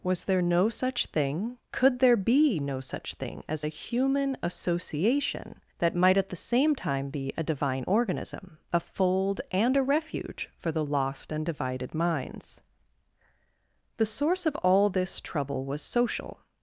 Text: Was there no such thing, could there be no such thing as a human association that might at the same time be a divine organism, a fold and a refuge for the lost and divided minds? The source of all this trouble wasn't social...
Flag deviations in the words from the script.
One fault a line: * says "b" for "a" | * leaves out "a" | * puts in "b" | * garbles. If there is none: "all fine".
* says "was" for "wasn't"